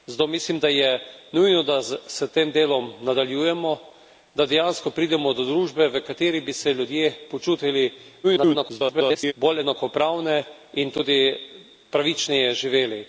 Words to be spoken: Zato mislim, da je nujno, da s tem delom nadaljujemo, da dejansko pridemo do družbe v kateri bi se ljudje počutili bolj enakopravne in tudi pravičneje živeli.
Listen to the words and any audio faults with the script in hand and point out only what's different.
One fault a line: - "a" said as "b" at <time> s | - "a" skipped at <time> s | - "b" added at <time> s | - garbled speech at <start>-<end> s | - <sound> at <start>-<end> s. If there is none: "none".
- garbled speech at 8.2-9.3 s